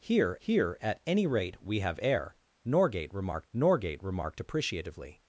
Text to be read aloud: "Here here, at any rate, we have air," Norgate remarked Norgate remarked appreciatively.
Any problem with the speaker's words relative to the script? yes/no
no